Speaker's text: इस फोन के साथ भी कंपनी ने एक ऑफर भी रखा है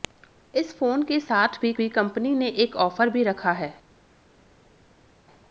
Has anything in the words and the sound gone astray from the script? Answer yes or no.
yes